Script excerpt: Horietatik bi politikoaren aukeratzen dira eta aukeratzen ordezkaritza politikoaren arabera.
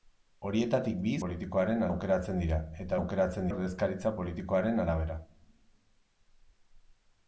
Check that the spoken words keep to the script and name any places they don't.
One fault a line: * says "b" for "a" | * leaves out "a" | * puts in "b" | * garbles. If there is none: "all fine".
all fine